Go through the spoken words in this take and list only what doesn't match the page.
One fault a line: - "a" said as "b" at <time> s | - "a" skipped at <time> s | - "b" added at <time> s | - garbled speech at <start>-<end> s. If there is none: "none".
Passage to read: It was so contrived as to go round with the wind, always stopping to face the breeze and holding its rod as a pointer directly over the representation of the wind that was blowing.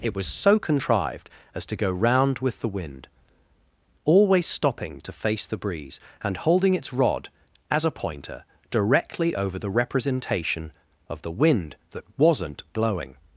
- "was" said as "wasn't" at 12.2 s